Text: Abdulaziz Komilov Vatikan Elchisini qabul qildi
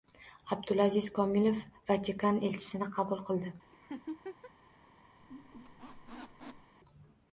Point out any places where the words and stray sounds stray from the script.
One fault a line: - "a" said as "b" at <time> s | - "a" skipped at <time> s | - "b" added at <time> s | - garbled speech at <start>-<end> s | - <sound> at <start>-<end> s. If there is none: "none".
- laugh at 3.7-4.5 s
- squeak at 5.2-6.7 s